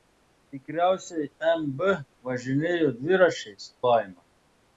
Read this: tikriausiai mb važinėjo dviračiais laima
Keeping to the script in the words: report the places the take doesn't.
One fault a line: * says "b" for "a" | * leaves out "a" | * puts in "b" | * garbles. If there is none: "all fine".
all fine